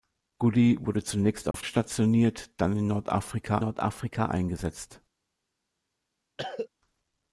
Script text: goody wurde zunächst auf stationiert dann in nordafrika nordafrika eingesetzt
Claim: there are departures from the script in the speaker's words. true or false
false